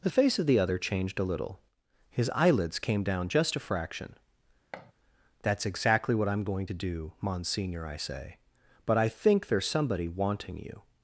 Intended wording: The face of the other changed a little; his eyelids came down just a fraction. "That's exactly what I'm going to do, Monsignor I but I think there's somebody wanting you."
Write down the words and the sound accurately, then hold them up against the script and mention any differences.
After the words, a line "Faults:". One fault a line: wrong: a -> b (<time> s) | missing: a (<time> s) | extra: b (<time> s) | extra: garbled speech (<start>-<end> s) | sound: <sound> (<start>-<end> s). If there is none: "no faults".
The face of the other changed a little; his eyelids came down just a fraction. "That's exactly what I'm going to do, Monsignor I say but I think there's somebody wanting you."
Faults:
sound: thud (4.7-4.9 s)
extra: say (8.0 s)